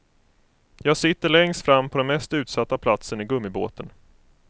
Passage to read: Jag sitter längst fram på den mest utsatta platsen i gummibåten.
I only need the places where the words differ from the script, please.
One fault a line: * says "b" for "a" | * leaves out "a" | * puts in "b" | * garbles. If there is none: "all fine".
all fine